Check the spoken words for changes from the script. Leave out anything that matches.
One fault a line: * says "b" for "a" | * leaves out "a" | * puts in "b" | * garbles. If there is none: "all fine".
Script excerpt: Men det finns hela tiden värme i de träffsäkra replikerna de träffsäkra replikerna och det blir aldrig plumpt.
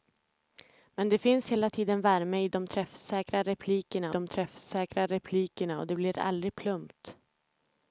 all fine